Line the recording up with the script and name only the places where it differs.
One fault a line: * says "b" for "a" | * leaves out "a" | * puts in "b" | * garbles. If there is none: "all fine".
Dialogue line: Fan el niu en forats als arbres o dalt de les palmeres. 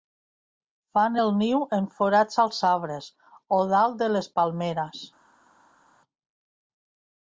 all fine